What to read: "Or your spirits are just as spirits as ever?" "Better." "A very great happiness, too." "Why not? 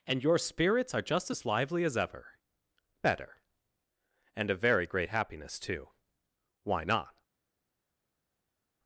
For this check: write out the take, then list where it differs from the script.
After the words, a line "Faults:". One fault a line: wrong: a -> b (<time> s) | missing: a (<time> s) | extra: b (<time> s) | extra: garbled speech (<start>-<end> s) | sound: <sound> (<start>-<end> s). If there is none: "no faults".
"And your spirits are just as lively as ever?" "Better." "And a very great happiness, too." "Why not?
Faults:
wrong: Or -> And (0.1 s)
wrong: spirits -> lively (1.4 s)
extra: And (4.3 s)